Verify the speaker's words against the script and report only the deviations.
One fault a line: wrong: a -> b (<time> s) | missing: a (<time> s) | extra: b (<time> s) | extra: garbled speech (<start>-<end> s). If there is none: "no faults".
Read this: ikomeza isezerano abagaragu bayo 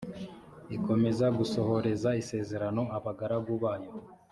extra: gusohoreza (1.4 s)